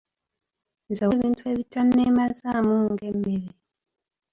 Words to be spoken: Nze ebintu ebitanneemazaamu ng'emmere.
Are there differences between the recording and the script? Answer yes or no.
no